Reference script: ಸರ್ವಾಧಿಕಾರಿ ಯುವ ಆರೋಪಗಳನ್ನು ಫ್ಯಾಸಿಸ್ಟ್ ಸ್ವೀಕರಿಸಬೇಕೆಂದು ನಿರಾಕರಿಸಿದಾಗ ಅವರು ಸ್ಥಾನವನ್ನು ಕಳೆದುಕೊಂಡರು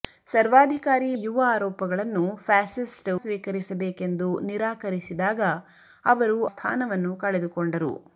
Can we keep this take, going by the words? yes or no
yes